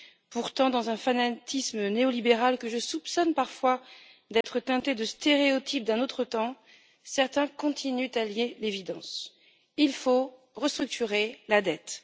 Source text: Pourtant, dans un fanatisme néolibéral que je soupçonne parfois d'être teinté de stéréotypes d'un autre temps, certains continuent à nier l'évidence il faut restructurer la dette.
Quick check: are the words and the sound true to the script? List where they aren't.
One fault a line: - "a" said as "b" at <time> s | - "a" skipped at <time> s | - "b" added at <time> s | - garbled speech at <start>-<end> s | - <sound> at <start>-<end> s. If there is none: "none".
- dropout at 4.4-4.4 s